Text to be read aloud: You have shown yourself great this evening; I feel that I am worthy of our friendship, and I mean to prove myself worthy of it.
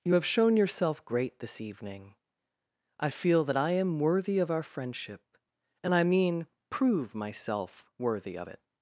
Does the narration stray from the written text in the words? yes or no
yes